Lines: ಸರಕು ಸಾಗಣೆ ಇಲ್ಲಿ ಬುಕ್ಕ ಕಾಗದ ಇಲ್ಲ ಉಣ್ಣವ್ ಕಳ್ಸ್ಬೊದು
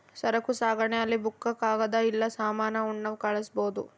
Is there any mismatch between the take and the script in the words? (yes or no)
yes